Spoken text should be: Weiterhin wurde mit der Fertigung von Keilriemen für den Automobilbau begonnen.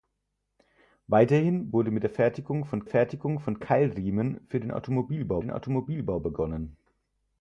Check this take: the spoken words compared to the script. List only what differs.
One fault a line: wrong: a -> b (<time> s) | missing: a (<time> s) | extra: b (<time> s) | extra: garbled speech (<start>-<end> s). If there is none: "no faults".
extra: Fertigung von (2.8 s)
extra: den Automobilbau (5.4 s)